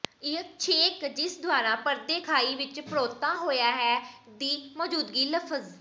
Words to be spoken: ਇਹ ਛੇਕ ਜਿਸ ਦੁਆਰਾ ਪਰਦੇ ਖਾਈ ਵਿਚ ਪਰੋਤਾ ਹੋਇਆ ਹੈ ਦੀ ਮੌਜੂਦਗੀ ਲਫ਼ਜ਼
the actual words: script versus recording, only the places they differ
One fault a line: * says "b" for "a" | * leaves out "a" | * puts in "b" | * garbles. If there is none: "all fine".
all fine